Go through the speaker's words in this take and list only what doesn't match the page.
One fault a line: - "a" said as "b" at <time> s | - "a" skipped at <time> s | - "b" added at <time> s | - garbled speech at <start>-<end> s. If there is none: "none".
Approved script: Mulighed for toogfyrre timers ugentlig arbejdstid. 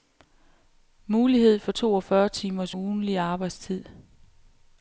none